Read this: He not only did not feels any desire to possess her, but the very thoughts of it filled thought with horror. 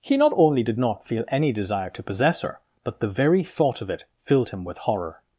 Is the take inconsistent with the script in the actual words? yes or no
yes